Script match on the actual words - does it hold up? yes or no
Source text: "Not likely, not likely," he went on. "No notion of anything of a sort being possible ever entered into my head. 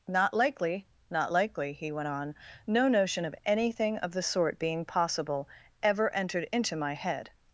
no